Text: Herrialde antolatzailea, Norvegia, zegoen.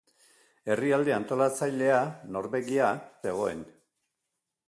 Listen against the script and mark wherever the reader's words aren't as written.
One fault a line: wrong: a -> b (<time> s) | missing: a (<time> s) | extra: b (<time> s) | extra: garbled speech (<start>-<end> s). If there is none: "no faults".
no faults